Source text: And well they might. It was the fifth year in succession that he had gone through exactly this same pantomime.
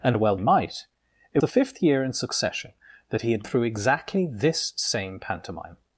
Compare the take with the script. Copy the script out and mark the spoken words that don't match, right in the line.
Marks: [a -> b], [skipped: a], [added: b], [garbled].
And well [skipped: they] might. It [skipped: was] the fifth year in succession that he had [skipped: gone] through exactly this same pantomime.